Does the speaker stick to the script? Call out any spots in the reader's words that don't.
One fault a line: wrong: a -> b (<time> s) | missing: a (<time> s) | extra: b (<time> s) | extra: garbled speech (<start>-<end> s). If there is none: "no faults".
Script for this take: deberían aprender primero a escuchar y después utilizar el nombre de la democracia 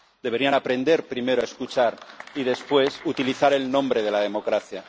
no faults